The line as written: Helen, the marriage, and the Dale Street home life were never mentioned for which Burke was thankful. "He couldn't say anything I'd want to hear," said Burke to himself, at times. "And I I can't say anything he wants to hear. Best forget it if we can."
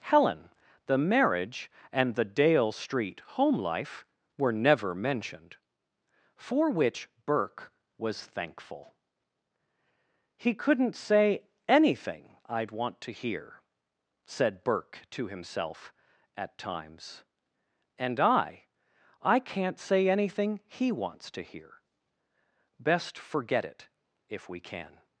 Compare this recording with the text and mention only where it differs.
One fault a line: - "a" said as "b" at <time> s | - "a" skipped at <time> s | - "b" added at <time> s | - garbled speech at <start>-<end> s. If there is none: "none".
none